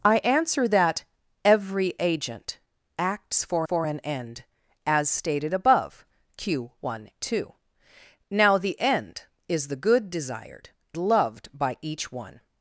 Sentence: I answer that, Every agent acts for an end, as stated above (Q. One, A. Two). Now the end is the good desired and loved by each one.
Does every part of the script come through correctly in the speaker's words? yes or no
no